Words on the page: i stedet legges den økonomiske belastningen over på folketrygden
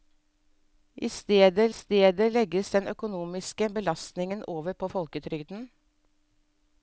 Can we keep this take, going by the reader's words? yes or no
no